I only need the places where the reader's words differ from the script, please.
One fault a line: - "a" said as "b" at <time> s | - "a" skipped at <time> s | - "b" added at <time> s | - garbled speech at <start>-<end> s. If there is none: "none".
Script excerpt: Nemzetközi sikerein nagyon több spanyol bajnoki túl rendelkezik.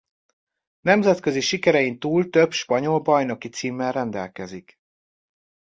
- "nagyon" said as "túl" at 2.0 s
- "túl" said as "címmel" at 3.5 s